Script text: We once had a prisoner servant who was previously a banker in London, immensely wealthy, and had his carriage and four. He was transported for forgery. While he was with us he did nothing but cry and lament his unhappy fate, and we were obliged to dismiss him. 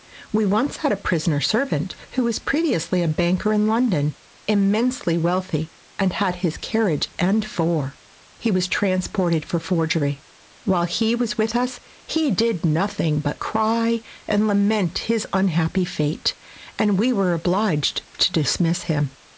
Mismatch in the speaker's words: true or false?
false